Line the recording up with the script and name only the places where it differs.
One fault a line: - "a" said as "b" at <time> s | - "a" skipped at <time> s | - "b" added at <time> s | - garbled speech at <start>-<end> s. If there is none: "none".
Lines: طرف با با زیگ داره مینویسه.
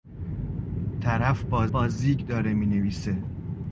none